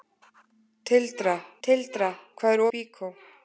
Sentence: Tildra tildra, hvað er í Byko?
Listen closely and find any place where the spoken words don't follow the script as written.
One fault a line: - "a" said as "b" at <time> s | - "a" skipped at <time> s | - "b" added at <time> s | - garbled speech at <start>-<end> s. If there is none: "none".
none